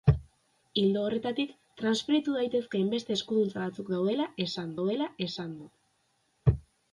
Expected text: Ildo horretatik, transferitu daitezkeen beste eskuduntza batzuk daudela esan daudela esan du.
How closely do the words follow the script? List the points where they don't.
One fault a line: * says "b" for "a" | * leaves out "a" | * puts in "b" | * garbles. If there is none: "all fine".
all fine